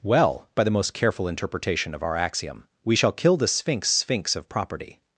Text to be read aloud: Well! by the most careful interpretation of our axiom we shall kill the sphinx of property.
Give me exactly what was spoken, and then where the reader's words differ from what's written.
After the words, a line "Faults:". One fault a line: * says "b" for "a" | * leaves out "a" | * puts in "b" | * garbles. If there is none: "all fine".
Well! by the most careful interpretation of our axiom we shall kill the sphinx sphinx of property.
Faults:
* puts in "sphinx"